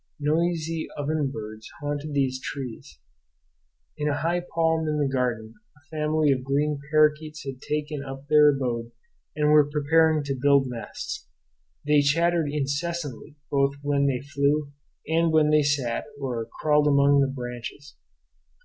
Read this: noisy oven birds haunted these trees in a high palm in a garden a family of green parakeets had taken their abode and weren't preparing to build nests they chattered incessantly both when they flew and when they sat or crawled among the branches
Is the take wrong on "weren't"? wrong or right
wrong